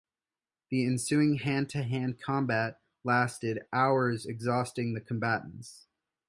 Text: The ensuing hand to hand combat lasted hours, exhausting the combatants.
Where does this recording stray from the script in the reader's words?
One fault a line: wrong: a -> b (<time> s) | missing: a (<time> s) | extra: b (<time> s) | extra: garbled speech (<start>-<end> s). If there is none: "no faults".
no faults